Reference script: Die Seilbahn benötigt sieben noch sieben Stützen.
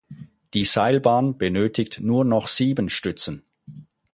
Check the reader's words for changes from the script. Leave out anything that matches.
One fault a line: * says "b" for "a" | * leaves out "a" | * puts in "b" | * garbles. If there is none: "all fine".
* says "nur" for "sieben"